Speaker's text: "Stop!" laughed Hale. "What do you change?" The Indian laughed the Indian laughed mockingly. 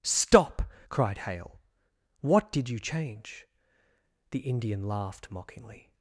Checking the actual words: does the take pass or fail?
fail